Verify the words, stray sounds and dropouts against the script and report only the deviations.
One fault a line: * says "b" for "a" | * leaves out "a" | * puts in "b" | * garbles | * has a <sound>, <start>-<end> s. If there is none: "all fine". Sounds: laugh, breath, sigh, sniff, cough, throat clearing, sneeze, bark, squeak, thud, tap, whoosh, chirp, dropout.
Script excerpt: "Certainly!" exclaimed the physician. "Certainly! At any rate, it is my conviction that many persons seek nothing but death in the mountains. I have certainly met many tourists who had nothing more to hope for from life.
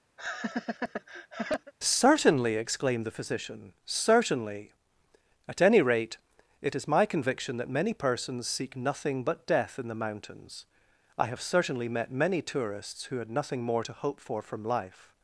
* has a laugh, 0.2-1.7 s